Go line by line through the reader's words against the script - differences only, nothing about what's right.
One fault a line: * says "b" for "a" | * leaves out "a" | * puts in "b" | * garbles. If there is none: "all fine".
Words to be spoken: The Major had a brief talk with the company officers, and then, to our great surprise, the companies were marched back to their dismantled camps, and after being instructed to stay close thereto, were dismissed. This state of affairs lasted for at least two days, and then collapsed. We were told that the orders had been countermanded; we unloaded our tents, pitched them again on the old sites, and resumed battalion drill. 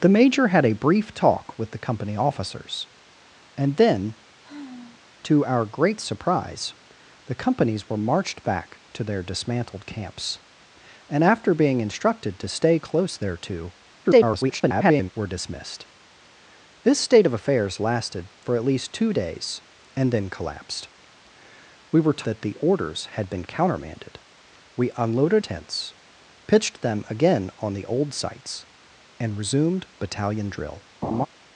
* garbles
* leaves out "told"
* leaves out "our"